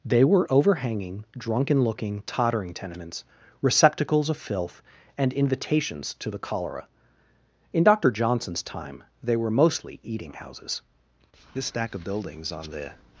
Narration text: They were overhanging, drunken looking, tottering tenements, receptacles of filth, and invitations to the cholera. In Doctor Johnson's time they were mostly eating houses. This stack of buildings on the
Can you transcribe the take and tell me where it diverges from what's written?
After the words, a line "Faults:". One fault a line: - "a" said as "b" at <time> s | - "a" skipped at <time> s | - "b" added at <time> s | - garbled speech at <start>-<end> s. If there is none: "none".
They were overhanging, drunken looking, tottering tenements, receptacles of filth, and invitations to the cholera. In Doctor Johnson's time they were mostly eating houses. This stack of buildings on the
Faults:
none